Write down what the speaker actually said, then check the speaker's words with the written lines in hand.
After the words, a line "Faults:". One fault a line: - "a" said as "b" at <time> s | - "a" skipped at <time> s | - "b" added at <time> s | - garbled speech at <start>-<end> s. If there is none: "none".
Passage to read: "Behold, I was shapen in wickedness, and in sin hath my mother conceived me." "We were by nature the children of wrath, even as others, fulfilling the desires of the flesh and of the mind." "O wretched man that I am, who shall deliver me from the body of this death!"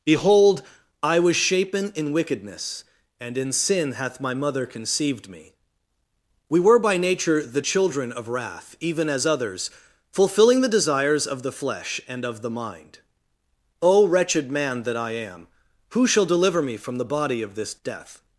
"Behold, I was shapen in wickedness, and in sin hath my mother conceived me." "We were by nature the children of wrath, even as others, fulfilling the desires of the flesh and of the mind." "O wretched man that I am, who shall deliver me from the body of this death!"
Faults:
none